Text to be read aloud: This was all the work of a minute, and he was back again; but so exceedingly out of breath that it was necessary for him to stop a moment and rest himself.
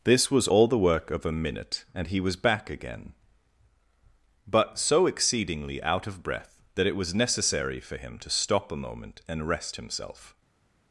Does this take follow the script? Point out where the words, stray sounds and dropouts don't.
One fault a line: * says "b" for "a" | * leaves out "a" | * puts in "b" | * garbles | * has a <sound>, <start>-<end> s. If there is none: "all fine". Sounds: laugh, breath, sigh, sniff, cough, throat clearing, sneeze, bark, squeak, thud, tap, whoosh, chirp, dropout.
all fine